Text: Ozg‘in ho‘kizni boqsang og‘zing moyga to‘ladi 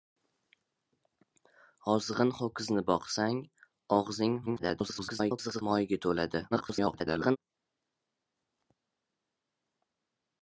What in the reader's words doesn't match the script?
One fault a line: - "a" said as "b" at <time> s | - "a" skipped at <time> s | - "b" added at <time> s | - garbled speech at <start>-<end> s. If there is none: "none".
- garbled speech at 4.5-5.6 s
- garbled speech at 6.5-7.4 s